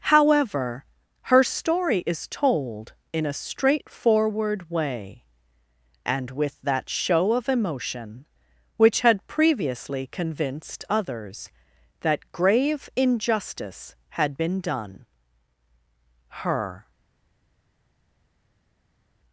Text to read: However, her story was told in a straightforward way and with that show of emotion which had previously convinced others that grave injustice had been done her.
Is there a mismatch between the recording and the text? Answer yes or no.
yes